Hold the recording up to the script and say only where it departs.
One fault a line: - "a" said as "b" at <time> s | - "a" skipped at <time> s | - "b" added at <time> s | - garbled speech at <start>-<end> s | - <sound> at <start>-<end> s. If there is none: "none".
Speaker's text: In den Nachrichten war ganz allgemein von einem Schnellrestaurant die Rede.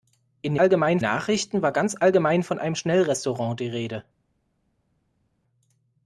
- "den" said as "allgemein" at 0.6 s